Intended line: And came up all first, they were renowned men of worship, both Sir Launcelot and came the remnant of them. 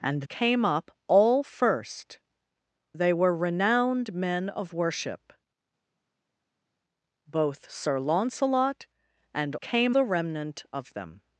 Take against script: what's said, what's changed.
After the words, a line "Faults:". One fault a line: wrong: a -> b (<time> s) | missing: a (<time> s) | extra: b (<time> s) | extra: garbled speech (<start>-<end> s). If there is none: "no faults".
And came up all first, they were renowned men of worship, both Sir Launcelot and came the remnant of them.
Faults:
no faults